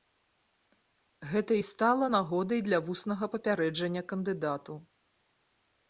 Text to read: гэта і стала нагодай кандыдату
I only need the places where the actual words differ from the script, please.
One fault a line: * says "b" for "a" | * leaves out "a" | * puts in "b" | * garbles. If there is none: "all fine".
* puts in "для вуснага папярэджання"